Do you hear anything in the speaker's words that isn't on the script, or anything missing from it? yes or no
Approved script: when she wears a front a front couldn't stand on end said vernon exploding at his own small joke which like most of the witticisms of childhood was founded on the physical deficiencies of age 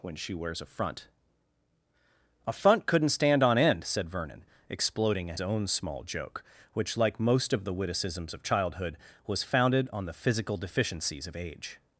yes